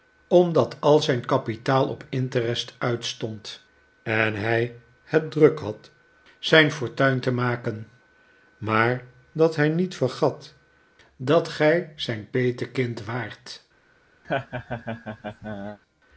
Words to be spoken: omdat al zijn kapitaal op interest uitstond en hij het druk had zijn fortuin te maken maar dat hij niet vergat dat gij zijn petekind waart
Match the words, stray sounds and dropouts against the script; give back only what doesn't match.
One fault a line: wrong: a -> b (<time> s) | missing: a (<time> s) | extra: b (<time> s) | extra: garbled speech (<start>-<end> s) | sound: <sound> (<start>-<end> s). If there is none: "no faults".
sound: laugh (14.2-15.8 s)